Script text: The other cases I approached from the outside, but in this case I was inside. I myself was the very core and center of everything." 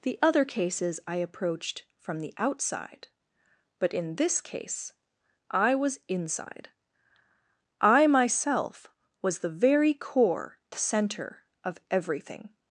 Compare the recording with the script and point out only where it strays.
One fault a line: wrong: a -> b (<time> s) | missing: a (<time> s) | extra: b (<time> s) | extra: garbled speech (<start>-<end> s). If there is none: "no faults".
missing: and (10.6 s)